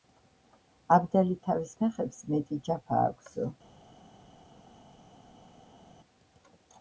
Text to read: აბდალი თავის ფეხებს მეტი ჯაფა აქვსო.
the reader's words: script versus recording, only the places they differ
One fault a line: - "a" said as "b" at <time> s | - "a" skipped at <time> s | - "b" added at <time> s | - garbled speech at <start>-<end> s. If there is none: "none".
none